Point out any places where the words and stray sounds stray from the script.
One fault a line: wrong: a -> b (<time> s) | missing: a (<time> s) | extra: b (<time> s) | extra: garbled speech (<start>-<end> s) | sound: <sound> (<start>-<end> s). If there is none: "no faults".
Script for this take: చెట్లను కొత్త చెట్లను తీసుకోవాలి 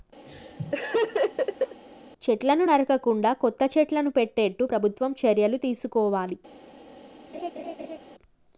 sound: laugh (0.3-1.8 s)
extra: నరకకుండా (2.6 s)
extra: పెట్టేట్టు ప్రభుత్వం చర్యలు (4.1 s)
sound: laugh (7.3-8.0 s)